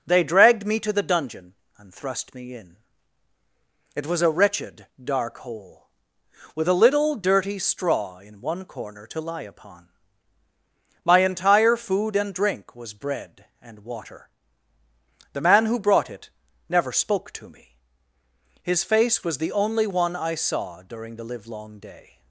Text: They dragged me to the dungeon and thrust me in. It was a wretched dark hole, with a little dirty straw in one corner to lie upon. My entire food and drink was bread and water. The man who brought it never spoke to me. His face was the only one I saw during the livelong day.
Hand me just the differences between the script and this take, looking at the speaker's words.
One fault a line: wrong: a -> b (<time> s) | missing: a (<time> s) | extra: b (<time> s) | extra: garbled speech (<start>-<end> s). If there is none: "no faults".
no faults